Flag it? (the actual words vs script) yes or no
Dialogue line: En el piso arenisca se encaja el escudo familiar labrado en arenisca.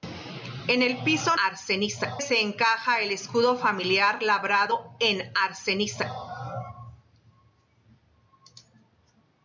no